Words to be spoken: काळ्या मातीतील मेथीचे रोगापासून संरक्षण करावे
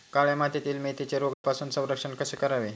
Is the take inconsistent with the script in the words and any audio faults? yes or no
yes